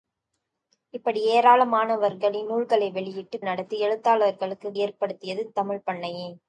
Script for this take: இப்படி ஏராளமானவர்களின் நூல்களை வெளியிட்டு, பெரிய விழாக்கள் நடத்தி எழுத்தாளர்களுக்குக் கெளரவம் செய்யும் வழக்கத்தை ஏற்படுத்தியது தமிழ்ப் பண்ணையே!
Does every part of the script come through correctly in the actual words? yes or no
no